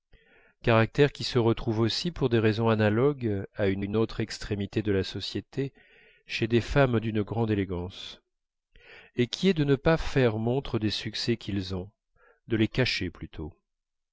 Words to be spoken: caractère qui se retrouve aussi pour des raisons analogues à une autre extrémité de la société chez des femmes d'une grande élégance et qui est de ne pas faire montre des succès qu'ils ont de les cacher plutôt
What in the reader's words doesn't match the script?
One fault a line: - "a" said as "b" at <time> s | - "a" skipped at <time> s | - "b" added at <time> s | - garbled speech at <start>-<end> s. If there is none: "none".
- "une" added at 3.8 s